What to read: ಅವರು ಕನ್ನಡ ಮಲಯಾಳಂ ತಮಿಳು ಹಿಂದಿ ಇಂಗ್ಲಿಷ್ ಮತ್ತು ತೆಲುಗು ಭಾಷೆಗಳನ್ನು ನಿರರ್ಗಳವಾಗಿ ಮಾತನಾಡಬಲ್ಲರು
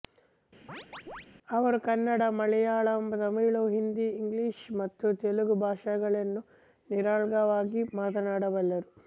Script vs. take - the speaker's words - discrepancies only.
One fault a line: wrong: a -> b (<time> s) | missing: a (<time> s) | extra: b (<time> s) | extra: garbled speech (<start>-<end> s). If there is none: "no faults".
no faults